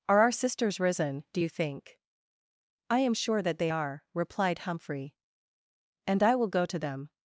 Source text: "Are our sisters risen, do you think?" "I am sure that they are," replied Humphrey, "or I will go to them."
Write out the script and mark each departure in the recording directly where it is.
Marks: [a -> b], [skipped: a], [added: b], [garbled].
"Are our sisters risen, do you think?" "I am sure that they are," replied Humphrey, ["or -> and] I will go to them."